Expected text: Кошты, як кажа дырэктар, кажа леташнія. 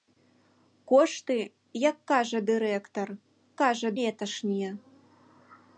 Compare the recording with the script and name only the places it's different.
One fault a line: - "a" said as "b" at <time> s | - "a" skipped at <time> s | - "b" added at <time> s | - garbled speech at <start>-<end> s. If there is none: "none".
none